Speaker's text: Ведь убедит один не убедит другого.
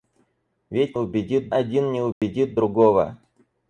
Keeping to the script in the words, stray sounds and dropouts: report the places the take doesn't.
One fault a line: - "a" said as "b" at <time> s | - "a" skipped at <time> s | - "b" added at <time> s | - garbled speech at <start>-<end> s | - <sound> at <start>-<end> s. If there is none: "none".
- dropout at 2.1-2.2 s